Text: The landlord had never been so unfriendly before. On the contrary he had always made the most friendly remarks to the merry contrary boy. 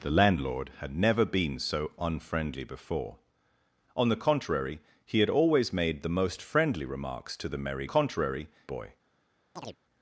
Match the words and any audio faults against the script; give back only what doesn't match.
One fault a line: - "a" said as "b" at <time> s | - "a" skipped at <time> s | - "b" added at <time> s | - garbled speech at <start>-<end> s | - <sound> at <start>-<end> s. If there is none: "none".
- chirp at 9.6-9.8 s